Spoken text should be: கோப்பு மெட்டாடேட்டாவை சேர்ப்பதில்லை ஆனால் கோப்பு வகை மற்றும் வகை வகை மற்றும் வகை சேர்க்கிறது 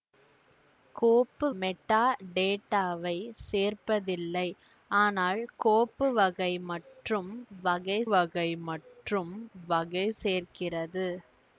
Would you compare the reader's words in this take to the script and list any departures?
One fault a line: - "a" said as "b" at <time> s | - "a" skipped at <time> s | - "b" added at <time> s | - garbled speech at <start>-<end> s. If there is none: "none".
none